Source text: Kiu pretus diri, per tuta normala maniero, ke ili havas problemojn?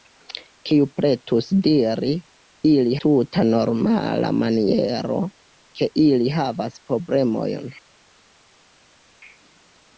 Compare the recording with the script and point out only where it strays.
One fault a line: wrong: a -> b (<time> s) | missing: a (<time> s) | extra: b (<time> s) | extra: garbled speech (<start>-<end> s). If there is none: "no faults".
wrong: per -> ili (2.7 s)